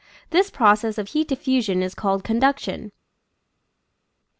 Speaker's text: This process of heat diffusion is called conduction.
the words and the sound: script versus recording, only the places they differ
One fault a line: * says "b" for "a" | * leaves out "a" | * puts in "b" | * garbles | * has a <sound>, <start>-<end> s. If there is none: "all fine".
all fine